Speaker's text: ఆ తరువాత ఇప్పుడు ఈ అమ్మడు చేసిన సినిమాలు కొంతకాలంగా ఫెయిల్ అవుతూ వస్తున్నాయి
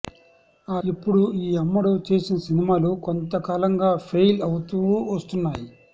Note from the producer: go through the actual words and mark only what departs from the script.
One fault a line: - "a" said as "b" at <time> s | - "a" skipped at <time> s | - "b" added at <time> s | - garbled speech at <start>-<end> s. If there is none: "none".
- "తరువాత" skipped at 0.8 s